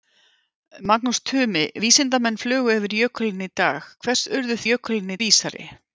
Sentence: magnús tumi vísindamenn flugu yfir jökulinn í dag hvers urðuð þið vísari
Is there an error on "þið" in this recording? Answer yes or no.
yes